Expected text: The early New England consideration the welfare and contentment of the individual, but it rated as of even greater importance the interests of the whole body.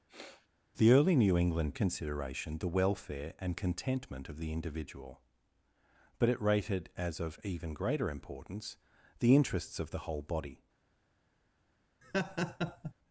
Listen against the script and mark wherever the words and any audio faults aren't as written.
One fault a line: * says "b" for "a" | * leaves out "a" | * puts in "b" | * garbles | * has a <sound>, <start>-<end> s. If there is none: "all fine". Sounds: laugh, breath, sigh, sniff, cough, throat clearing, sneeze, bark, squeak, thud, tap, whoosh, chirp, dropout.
* has a sniff, 0.1-0.5 s
* has a laugh, 12.0-12.9 s